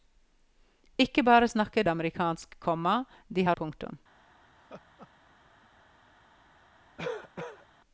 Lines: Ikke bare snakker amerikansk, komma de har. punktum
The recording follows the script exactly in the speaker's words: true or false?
true